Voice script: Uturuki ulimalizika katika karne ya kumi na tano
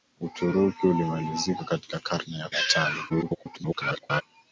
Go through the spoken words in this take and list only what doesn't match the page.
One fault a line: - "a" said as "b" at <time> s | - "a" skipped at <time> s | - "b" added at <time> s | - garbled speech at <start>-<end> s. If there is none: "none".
- "kumi" skipped at 2.5 s
- garbled speech at 3.1-4.2 s